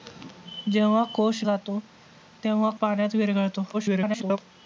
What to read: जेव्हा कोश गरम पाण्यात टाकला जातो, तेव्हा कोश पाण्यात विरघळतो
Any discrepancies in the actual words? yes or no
yes